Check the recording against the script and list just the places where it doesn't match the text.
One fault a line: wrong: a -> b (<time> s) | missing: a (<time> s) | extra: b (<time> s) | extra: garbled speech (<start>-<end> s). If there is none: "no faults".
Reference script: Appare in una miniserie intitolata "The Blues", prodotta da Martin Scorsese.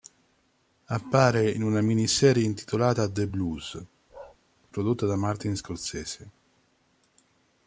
no faults